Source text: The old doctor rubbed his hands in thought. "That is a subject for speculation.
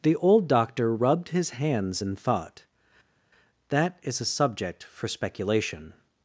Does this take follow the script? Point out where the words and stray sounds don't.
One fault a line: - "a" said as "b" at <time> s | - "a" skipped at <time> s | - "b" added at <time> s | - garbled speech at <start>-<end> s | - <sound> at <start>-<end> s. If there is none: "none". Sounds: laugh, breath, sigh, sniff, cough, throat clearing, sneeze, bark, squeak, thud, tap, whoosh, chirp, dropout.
none